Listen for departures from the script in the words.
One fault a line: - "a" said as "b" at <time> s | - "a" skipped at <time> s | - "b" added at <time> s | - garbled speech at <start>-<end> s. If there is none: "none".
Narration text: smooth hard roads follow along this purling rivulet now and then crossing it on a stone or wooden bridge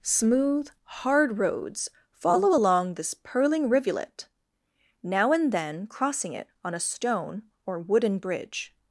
none